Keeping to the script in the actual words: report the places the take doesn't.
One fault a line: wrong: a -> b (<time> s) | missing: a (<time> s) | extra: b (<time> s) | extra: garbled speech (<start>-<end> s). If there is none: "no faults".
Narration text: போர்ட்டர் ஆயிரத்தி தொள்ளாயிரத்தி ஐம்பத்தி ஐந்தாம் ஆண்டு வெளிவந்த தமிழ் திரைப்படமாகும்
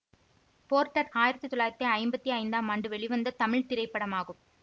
no faults